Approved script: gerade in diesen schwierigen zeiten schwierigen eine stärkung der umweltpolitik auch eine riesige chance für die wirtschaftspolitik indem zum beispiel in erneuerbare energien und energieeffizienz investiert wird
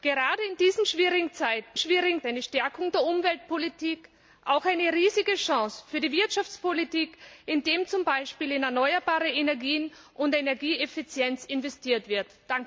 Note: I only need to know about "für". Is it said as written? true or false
true